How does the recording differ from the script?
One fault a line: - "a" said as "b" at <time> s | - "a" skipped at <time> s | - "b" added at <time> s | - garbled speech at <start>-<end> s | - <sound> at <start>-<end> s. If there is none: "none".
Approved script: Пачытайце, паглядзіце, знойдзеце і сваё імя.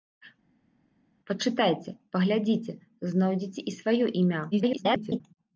- garbled speech at 4.5-5.2 s